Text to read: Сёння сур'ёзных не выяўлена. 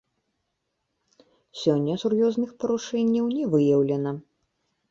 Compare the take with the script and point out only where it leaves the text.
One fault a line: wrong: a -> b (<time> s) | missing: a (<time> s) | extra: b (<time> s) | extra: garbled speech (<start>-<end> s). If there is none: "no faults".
extra: парушэнняў (2.6 s)